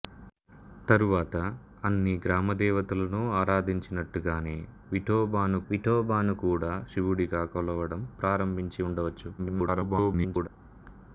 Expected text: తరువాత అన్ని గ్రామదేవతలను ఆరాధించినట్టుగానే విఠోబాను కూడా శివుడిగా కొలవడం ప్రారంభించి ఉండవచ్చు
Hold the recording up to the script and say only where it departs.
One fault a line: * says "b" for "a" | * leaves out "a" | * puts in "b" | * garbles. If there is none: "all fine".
* puts in "విఠోబాను"
* garbles